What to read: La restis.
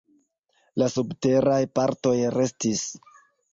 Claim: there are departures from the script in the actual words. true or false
true